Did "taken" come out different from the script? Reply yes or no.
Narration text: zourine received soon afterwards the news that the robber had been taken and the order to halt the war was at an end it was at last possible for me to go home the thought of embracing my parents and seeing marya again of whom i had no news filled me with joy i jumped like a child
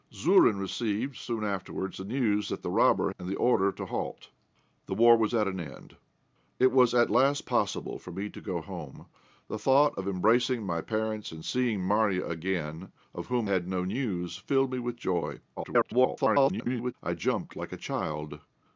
yes